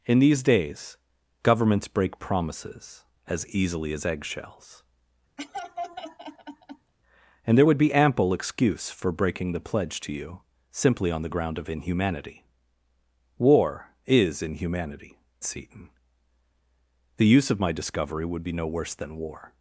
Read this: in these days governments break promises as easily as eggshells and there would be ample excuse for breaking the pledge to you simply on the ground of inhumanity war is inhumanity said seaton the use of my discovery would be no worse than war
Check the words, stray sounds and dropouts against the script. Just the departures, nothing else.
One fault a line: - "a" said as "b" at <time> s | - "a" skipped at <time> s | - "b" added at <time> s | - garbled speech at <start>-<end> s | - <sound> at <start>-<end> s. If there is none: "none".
- laugh at 5.4-6.9 s
- "said" skipped at 15.2 s